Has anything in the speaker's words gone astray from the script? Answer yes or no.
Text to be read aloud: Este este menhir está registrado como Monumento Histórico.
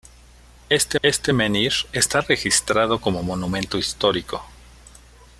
no